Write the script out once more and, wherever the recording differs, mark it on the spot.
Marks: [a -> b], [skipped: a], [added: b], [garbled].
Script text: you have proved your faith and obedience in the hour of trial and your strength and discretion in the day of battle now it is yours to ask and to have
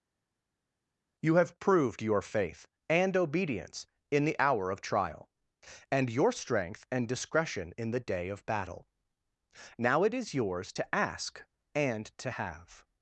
you have proved your faith and obedience in the hour of trial and your strength and discretion in the day of battle now it is yours to ask and to have